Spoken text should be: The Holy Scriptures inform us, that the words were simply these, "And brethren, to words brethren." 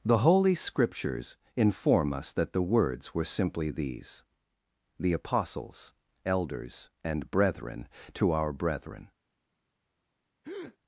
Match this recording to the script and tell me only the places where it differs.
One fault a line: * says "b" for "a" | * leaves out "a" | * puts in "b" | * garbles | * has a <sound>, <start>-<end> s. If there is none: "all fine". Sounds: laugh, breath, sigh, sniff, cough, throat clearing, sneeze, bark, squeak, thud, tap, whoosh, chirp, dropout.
* puts in "The apostles elders"
* says "our" for "words"
* has a breath, 10.4-10.8 s